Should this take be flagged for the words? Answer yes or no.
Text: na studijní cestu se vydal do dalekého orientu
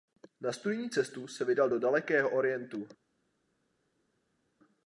no